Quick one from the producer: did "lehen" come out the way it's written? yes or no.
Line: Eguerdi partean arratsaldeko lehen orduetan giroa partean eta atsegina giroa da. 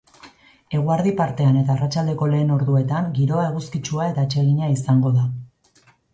yes